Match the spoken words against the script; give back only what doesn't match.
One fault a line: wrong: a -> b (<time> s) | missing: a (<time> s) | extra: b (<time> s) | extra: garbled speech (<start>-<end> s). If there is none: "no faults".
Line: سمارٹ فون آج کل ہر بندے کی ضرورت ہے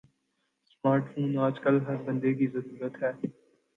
no faults